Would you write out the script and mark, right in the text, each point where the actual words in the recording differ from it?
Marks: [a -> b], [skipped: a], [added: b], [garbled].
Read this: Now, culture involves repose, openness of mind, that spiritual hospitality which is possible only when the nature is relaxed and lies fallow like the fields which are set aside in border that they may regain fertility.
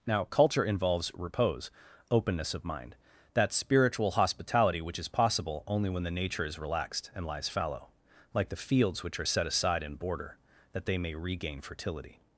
Now, culture involves repose, openness of mind, that spiritual hospitality which is possible only when the nature is relaxed and lies fallow like the fields which are set aside in border that they may regain fertility.